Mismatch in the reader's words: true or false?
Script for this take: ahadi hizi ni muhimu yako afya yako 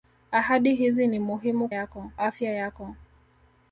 false